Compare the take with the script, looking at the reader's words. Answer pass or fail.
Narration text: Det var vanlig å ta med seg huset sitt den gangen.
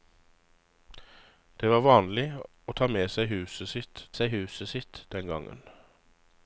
fail